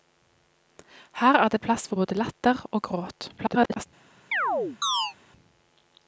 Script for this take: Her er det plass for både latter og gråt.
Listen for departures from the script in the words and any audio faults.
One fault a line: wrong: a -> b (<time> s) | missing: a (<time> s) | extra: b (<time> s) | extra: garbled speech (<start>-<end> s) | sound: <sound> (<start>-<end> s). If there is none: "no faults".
extra: garbled speech (3.4-3.9 s)
sound: chirp (4.3-5.1 s)